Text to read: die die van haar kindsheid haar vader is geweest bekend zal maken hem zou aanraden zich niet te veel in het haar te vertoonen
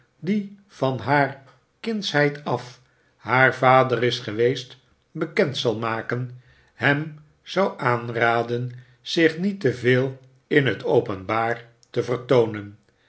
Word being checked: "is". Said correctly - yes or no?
yes